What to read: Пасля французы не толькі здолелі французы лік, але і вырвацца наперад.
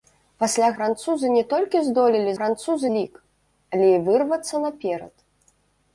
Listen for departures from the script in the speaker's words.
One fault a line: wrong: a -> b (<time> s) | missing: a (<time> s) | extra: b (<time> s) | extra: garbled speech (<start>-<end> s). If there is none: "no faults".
no faults